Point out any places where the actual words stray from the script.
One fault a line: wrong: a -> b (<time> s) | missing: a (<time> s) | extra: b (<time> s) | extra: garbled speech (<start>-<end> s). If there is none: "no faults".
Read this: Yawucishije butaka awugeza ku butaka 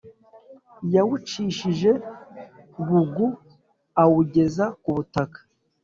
wrong: butaka -> bugu (2.9 s)